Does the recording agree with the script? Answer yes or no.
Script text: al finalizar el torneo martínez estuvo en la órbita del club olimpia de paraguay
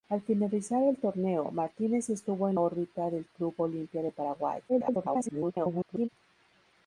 no